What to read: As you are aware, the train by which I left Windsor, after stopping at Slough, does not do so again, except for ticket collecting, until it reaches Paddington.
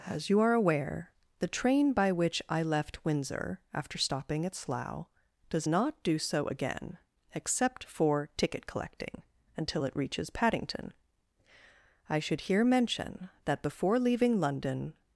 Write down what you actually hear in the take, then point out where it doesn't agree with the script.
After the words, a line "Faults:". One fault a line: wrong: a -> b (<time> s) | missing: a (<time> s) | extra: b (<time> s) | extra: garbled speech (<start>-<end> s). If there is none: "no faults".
As you are aware, the train by which I left Windsor, after stopping at Slough, does not do so again, except for ticket collecting, until it reaches Paddington. I should here mention that before leaving London
Faults:
extra: I should here mention that before leaving London (12.1 s)